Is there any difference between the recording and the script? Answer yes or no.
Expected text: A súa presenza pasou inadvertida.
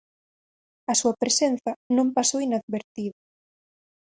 yes